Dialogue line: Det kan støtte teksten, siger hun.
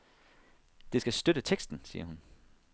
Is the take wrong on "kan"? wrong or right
wrong